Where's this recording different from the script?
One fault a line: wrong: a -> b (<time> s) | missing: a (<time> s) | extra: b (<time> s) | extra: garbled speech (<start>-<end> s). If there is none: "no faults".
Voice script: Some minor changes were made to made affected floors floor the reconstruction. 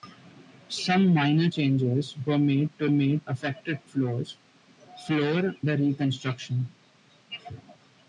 no faults